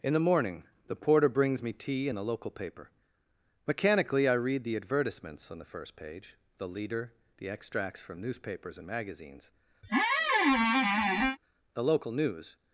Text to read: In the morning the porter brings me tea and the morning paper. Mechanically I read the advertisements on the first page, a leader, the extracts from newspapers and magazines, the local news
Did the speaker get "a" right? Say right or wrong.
wrong